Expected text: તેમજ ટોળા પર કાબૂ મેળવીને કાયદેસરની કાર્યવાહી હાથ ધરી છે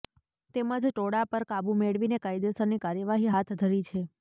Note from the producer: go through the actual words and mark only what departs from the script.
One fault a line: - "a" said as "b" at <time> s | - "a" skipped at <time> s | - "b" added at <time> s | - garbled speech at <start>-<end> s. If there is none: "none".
none